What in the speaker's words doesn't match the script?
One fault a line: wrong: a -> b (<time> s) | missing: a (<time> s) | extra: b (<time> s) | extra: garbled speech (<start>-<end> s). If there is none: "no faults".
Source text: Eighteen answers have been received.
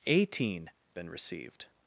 missing: answers have (0.7 s)